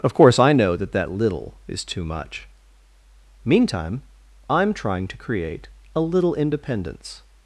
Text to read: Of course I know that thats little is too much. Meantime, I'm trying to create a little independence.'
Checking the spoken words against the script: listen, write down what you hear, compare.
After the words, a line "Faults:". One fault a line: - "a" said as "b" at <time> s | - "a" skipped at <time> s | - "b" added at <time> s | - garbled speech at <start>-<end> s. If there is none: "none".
Of course I know that that little is too much. Meantime, I'm trying to create a little independence.'
Faults:
- "thats" said as "that" at 0.9 s